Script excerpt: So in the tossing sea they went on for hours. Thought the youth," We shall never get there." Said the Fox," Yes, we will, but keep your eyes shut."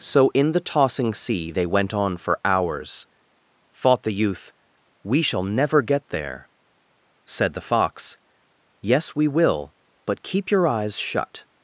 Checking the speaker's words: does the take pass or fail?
pass